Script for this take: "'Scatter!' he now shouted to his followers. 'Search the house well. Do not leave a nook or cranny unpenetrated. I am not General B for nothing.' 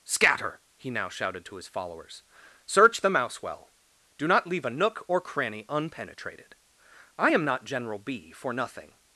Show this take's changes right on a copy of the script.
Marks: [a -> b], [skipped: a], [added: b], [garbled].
"'Scatter!' he now shouted to his followers. 'Search the [house -> mouse] well. Do not leave a nook or cranny unpenetrated. I am not General B for nothing.'